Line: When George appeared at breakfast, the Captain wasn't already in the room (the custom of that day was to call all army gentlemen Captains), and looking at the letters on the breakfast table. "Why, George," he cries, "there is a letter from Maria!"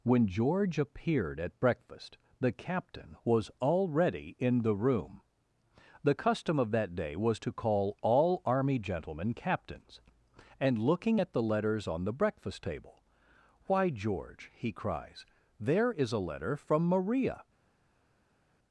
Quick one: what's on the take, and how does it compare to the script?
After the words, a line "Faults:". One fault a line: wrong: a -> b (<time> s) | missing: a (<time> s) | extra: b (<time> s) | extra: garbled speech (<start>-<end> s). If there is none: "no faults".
When George appeared at breakfast, the Captain was already in the room (the custom of that day was to call all army gentlemen Captains), and looking at the letters on the breakfast table. "Why, George," he cries, "there is a letter from Maria!"
Faults:
wrong: wasn't -> was (3.2 s)